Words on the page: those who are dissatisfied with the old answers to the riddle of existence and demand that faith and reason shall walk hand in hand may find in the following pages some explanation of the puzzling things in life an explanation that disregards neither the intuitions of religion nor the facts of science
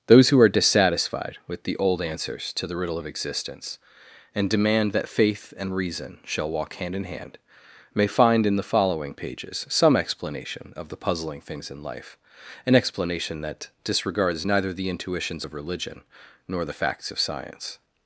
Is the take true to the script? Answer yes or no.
yes